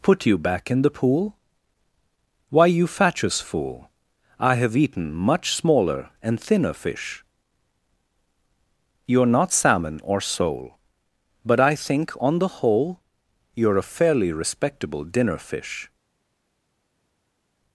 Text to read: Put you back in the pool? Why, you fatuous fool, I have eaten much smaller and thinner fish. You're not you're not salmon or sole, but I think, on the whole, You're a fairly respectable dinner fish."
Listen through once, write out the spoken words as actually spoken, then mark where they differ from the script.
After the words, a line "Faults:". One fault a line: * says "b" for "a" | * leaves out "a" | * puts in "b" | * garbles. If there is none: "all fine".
Put you back in the pool? Why, you fatuous fool, I have eaten much smaller and thinner fish. You're not salmon or sole, but I think, on the whole, You're a fairly respectable dinner fish."
Faults:
* leaves out "you're not"